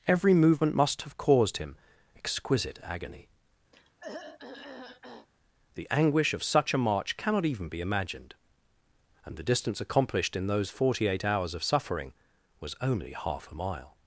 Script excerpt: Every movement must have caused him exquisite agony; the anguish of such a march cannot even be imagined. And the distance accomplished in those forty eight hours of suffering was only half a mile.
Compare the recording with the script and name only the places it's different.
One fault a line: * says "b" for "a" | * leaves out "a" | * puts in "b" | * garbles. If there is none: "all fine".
all fine